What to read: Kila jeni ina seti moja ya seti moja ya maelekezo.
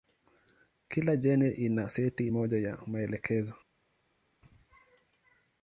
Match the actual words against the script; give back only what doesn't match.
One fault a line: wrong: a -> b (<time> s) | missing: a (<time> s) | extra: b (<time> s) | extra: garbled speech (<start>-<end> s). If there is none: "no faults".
missing: seti moja ya (2.8 s)